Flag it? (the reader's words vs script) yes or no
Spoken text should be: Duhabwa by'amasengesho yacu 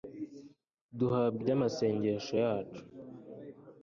no